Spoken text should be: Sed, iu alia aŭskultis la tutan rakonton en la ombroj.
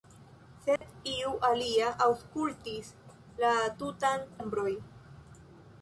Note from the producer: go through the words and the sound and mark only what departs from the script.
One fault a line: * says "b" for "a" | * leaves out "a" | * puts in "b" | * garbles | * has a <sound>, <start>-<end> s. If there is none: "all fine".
* has a dropout, 0.8-0.8 s
* leaves out "rakonton en la"